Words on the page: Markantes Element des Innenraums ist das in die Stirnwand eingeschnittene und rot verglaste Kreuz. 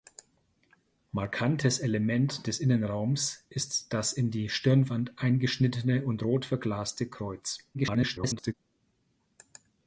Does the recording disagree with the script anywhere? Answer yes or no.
yes